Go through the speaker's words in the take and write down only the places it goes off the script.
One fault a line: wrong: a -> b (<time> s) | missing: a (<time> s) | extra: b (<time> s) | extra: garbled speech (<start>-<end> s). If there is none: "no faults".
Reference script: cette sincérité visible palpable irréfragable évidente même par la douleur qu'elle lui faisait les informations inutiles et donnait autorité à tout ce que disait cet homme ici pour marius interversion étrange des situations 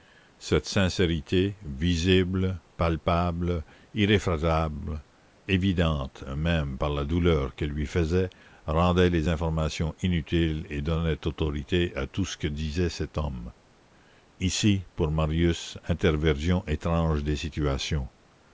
extra: rendait (8.7 s)